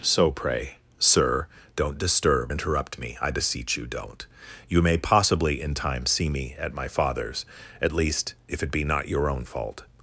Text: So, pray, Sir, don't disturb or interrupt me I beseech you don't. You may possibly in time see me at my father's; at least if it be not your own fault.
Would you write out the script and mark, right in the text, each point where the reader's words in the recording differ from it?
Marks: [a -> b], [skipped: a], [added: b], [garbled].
So, pray, Sir, don't disturb [skipped: or] interrupt me I beseech you don't. You may possibly in time see me at my father's; at least if it be not your own fault.